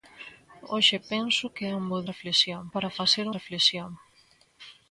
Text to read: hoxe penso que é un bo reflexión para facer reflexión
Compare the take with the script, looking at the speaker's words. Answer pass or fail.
pass